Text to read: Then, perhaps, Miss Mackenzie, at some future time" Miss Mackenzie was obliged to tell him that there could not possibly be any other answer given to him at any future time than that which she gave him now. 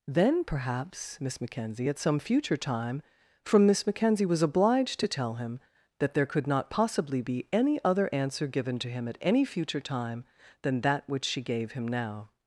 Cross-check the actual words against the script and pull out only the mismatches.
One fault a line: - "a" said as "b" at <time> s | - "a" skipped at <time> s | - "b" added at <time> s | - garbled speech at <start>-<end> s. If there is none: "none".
- "from" added at 3.4 s